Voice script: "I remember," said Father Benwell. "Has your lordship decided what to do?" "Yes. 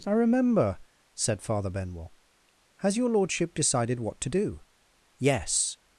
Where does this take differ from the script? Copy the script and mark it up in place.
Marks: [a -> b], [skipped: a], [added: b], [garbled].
"I remember," said Father Benwell. "Has your lordship decided what to do?" "Yes.